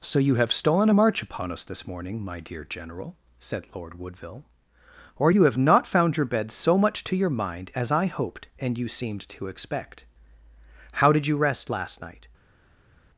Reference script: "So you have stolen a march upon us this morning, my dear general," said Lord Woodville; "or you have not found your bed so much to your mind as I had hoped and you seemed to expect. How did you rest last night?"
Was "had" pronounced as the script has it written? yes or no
no